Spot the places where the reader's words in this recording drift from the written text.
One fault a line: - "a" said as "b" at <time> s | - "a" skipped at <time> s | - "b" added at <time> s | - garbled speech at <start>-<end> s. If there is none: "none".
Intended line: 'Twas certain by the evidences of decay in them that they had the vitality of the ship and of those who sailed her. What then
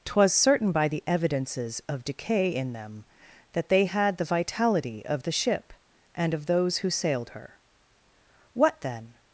none